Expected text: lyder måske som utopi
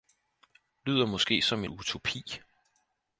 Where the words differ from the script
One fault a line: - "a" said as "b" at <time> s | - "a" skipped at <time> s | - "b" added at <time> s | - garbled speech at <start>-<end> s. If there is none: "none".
none